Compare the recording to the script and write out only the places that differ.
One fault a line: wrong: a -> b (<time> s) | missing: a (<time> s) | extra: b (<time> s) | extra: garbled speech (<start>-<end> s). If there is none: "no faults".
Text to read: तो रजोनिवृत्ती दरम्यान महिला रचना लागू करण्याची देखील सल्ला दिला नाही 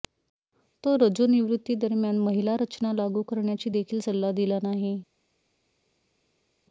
no faults